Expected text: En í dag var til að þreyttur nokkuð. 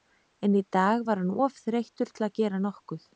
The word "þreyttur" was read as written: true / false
false